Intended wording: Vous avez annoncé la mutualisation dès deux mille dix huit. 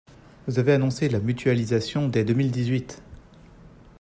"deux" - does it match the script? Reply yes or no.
yes